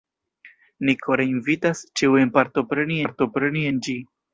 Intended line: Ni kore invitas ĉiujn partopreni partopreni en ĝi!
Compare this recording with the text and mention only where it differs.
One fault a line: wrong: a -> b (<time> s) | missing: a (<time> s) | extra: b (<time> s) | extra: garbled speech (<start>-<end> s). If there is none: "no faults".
no faults